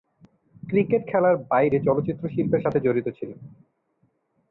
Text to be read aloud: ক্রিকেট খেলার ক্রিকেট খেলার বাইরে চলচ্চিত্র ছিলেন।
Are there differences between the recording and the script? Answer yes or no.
yes